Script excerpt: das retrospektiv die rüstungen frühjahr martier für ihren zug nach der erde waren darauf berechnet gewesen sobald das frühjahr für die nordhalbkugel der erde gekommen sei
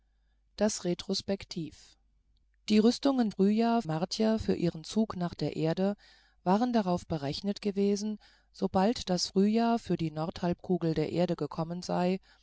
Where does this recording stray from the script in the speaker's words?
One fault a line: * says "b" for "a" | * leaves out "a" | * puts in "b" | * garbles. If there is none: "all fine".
all fine